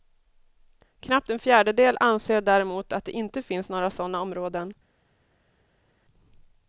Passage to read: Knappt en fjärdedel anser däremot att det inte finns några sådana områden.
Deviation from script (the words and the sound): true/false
false